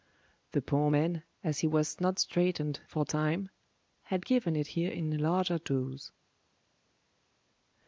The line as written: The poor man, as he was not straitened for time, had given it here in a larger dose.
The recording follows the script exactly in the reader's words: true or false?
true